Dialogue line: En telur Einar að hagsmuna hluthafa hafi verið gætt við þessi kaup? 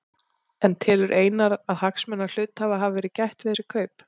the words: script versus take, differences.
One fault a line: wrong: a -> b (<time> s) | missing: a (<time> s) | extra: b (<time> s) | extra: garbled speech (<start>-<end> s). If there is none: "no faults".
no faults